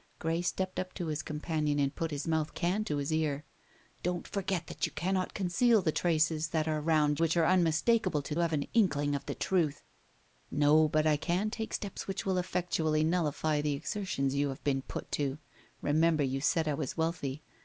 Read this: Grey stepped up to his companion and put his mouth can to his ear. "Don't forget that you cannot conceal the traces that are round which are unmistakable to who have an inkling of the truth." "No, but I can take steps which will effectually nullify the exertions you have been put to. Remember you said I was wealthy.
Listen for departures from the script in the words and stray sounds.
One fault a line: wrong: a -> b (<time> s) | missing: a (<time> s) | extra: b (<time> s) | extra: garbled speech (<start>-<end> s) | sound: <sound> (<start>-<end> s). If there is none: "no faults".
no faults